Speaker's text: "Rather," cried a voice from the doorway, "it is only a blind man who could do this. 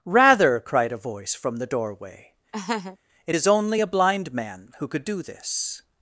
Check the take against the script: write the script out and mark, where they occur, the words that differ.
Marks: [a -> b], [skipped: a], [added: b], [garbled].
"Rather," cried a voice from the doorway, "it is only a blind man who could do this.